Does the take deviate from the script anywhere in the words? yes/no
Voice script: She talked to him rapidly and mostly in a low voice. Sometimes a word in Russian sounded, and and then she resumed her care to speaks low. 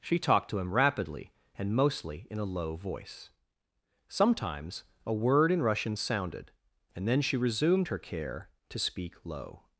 yes